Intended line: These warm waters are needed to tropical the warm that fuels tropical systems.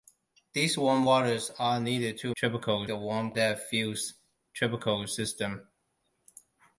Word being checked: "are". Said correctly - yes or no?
yes